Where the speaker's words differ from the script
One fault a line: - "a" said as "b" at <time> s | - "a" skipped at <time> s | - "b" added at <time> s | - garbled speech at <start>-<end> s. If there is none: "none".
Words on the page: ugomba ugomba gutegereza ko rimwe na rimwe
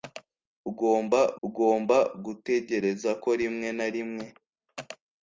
none